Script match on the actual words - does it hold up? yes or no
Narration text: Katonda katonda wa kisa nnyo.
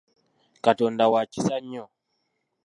no